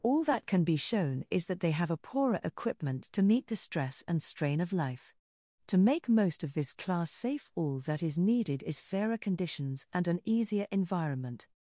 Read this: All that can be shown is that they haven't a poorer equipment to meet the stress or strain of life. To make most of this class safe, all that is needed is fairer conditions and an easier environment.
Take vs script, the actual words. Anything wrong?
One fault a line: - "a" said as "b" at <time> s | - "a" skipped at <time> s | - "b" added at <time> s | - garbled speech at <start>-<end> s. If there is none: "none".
- "haven't" said as "have" at 1.7 s
- "or" said as "and" at 4.1 s